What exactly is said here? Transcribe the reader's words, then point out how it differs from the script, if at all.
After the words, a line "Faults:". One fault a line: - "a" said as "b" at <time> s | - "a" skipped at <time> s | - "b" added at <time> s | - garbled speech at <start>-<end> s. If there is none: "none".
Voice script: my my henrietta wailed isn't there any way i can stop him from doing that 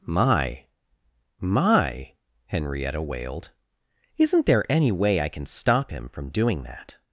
my my henrietta wailed isn't there any way i can stop him from doing that
Faults:
none